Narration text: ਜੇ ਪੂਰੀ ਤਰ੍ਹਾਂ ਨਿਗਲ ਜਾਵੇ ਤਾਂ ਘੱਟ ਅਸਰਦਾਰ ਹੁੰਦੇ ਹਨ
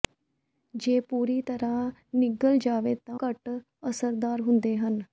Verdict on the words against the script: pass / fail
pass